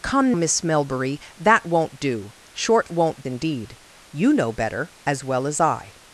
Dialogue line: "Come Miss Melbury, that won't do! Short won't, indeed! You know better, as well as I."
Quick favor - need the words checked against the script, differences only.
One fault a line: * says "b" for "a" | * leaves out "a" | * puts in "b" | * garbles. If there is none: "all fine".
all fine